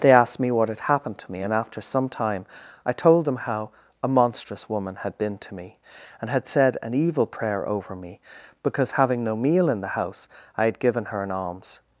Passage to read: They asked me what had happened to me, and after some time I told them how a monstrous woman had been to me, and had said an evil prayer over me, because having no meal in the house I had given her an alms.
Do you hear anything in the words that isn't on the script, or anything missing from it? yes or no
no